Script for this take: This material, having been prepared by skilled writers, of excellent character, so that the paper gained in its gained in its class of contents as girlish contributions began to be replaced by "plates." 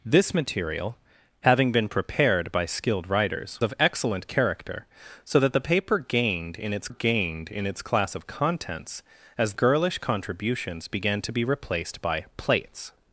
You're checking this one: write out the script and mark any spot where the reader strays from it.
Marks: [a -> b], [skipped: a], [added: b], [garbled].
This material, having been prepared by skilled writers, of excellent character, so that the paper gained in its gained in its class of contents as girlish contributions began to be replaced by "plates."